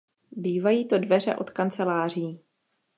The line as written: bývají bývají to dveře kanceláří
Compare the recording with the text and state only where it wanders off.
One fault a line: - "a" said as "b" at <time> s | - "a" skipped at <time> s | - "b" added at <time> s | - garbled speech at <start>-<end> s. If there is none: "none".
- "bývají" skipped at 0.9 s
- "od" added at 1.4 s